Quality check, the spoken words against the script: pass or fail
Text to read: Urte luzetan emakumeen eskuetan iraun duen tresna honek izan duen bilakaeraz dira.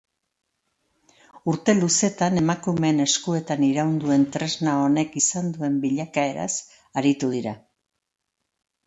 fail